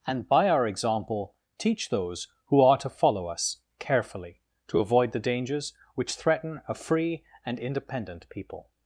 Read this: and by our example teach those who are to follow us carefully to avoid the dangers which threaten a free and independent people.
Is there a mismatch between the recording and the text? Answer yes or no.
no